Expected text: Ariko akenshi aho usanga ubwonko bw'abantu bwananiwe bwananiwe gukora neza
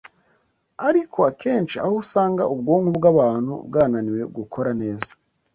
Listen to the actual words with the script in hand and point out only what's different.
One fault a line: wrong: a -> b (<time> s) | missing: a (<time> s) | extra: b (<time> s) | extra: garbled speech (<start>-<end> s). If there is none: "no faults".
missing: bwananiwe (4.2 s)